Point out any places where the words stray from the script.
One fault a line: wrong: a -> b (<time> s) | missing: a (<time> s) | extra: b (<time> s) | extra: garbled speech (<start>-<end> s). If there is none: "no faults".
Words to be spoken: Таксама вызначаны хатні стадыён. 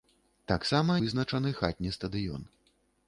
no faults